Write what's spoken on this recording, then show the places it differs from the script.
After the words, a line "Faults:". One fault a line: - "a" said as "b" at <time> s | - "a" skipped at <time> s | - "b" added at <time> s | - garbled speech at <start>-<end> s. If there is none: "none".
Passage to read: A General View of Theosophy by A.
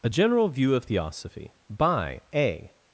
A General View of Theosophy by A.
Faults:
none